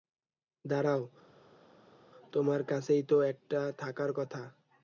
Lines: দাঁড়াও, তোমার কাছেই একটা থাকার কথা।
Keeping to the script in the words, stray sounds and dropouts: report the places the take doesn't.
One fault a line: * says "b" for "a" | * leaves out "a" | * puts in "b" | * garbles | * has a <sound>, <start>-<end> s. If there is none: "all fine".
* puts in "তো"